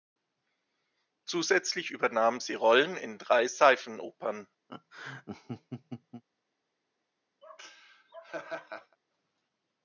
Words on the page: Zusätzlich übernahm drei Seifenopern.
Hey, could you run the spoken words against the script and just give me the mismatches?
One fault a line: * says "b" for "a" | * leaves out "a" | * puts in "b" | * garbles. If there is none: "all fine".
* puts in "sie Rollen in"